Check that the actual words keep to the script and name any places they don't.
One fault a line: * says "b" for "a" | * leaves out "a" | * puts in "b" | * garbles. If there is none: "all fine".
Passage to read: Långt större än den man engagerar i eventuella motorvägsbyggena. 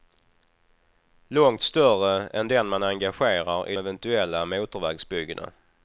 all fine